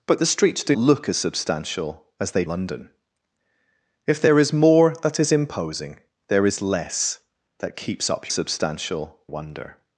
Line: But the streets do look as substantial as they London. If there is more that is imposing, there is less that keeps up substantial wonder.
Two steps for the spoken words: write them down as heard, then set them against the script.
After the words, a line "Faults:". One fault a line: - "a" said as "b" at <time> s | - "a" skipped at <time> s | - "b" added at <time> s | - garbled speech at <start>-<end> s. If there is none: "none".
But the streets do look as substantial as they London. If there is more that is imposing, there is less that keeps up substantial wonder.
Faults:
none